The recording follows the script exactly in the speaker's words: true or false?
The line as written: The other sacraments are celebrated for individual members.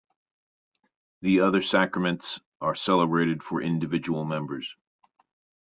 true